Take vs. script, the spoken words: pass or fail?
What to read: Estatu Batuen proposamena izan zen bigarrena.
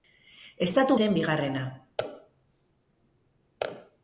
fail